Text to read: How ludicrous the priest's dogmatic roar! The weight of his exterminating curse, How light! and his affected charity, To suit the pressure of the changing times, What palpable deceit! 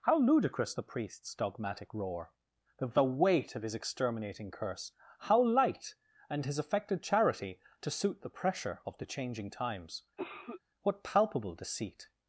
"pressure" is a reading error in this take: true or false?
false